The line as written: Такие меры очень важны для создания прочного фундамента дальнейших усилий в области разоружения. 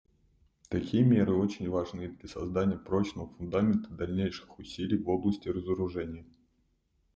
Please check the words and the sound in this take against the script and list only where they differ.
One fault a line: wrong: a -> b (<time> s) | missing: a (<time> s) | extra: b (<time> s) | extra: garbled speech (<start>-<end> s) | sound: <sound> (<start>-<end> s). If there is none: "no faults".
no faults